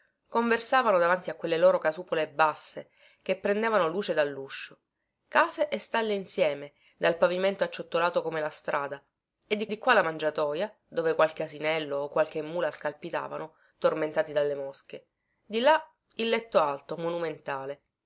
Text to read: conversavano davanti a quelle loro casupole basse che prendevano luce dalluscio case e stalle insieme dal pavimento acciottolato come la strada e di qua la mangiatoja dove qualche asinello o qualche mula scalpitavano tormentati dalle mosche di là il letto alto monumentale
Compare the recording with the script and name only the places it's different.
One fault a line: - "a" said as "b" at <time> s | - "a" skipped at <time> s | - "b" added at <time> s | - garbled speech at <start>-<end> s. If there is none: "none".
- "di" added at 9.7 s